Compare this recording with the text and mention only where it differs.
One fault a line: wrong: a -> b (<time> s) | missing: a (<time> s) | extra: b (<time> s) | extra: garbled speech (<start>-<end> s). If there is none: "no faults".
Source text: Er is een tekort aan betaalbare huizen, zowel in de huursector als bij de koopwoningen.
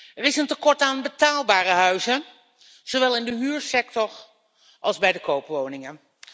no faults